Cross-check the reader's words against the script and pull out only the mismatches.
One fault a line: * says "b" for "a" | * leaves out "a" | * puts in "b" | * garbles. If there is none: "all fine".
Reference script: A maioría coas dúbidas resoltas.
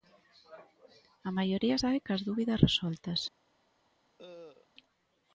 * puts in "sae"